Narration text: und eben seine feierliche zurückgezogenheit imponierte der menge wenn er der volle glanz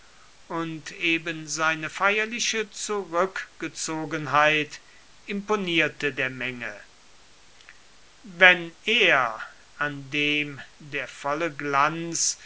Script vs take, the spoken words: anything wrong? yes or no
yes